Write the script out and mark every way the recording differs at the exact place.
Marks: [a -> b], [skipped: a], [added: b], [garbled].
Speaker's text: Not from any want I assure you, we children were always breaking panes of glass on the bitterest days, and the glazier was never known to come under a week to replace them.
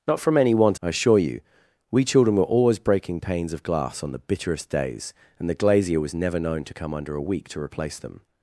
Not from any want I assure you, we children were always breaking panes of glass on the bitterest days, and the glazier was never known to come under a week to replace them.